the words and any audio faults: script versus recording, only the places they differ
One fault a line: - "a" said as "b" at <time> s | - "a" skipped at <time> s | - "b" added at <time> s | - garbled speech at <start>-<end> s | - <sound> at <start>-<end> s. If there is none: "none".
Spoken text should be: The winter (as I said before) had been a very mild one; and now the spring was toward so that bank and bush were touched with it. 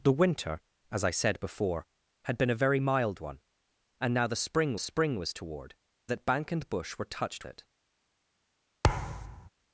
- "spring" added at 4.8 s
- "so" skipped at 5.8 s
- "with" skipped at 7.4 s
- thud at 8.8-9.5 s